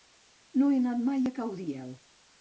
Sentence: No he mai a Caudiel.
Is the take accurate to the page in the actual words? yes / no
no